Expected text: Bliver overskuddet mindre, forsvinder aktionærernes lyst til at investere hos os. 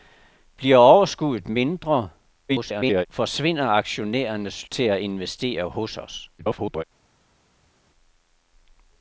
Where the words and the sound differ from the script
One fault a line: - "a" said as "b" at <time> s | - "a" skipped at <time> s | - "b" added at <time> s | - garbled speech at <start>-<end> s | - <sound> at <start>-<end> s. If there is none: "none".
- garbled speech at 2.5-3.1 s
- "lyst" skipped at 4.7 s
- garbled speech at 6.4-6.8 s